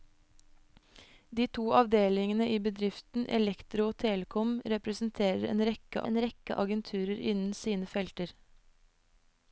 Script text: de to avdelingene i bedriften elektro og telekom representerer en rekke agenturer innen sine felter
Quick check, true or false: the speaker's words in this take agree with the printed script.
false